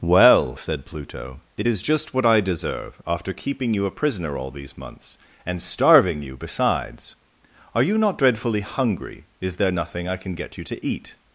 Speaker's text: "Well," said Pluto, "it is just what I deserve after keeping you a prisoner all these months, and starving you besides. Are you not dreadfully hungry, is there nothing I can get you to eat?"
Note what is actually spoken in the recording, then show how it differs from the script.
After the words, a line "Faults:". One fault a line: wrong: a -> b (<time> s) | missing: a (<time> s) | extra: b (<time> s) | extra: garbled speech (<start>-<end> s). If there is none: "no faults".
"Well," said Pluto, "it is just what I deserve after keeping you a prisoner all these months, and starving you besides. Are you not dreadfully hungry, is there nothing I can get you to eat?"
Faults:
no faults